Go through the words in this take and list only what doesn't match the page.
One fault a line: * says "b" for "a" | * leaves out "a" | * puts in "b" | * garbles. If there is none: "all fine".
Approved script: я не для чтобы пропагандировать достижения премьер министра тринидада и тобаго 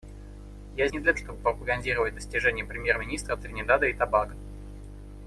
all fine